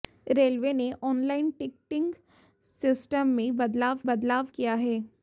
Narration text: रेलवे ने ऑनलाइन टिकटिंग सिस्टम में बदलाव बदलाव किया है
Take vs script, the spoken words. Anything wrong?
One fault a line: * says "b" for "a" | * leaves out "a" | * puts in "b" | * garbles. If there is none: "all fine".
all fine